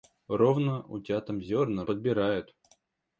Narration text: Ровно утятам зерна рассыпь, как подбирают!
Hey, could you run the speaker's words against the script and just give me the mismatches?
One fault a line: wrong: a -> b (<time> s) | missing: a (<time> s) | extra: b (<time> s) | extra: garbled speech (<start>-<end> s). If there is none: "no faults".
missing: рассыпь как (1.8 s)